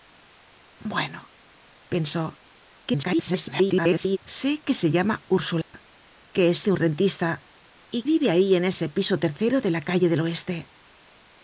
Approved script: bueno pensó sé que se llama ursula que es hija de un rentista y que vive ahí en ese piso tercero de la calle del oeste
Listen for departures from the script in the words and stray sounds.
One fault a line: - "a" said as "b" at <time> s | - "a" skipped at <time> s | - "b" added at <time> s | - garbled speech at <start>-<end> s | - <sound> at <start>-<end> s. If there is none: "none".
- garbled speech at 2.9-4.2 s
- dropout at 5.6-5.7 s
- "hija" skipped at 6.7 s
- "que" skipped at 8.0 s